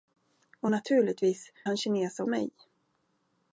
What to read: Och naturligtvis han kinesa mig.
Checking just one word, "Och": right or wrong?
right